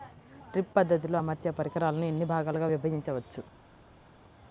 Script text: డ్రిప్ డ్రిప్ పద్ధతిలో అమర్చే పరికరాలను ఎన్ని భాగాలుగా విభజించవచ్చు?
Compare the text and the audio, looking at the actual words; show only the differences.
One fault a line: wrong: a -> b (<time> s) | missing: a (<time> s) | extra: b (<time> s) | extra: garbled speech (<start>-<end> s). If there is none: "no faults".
missing: డ్రిప్ (0.7 s)